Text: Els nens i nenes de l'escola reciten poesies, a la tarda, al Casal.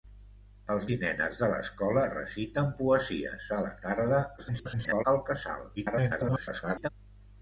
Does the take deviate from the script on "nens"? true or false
true